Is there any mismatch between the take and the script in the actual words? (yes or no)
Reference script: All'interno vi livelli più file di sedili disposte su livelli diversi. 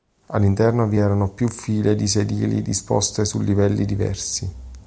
yes